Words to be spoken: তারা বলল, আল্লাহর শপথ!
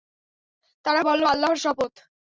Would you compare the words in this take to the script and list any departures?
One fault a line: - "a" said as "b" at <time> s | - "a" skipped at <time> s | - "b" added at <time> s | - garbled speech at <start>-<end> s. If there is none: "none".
none